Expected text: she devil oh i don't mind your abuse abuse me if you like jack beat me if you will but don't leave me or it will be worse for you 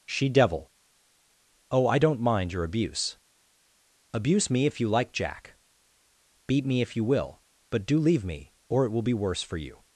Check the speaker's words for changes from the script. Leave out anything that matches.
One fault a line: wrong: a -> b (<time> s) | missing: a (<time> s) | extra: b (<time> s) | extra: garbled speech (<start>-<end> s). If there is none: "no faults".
wrong: don't -> do (7.8 s)